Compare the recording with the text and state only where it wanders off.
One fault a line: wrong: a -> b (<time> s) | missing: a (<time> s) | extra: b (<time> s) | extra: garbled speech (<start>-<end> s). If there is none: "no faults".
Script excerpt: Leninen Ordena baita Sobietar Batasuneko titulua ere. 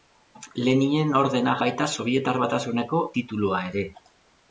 no faults